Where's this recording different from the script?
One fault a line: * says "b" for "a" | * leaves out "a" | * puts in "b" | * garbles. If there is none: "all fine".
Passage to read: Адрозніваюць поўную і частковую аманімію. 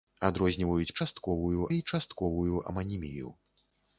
* says "частковую" for "поўную"